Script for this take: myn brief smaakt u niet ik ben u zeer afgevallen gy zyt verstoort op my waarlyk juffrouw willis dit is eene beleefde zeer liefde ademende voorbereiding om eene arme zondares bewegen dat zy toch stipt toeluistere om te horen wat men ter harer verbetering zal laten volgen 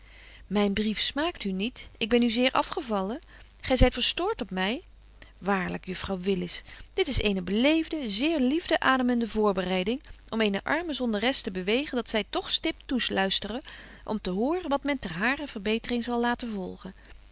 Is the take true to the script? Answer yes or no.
no